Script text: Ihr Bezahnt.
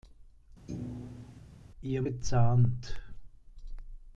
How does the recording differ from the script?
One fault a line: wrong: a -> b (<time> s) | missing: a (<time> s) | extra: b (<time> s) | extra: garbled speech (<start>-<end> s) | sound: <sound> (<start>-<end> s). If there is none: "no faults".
sound: thud (0.7-1.4 s)